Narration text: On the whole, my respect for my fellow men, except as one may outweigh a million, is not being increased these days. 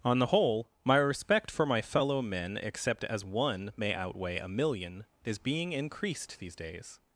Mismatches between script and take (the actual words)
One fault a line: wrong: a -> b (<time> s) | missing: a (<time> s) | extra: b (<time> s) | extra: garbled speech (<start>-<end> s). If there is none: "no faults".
missing: not (5.4 s)